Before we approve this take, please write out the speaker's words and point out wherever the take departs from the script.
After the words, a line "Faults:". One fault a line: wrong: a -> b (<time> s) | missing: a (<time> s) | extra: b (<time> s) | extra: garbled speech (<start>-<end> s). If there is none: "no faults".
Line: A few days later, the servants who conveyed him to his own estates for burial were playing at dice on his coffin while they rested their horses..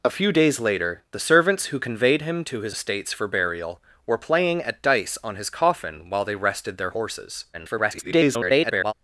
A few days later, the servants who conveyed him to his estates for burial were playing at dice on his coffin while they rested their horses.. [garbled]
Faults:
missing: own (2.8 s)
extra: garbled speech (7.5-8.9 s)